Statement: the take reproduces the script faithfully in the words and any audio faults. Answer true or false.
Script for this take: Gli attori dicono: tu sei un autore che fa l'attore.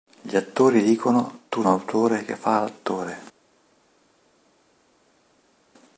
false